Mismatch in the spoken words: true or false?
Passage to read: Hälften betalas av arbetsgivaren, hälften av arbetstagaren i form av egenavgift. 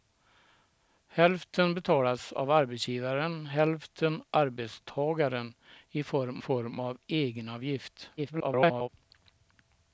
true